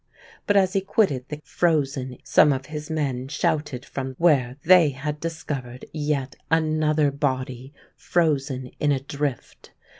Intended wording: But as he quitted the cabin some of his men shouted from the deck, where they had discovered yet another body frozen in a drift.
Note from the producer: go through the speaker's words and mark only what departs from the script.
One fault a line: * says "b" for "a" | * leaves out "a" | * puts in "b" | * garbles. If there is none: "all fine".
* says "frozen" for "cabin"
* leaves out "the deck"